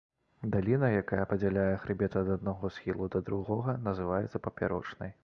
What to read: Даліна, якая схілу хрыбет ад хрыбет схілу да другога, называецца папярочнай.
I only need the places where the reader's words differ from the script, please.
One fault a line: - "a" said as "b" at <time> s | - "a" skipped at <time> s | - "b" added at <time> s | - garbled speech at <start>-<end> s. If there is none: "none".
- "схілу" said as "падзяляе" at 1.3 s
- "хрыбет" said as "аднаго" at 2.4 s